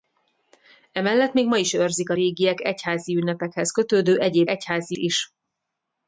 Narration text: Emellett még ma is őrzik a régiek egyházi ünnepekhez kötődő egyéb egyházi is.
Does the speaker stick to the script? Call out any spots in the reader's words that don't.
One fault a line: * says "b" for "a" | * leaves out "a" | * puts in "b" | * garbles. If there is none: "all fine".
all fine